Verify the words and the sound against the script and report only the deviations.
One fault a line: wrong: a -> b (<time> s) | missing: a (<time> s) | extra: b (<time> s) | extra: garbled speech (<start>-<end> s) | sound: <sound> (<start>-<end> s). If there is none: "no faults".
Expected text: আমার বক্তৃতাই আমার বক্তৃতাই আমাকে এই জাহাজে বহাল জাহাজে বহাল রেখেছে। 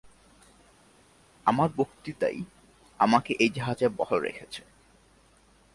missing: আমার বক্তৃতাই (2.4 s)
missing: জাহাজে বহাল (4.2 s)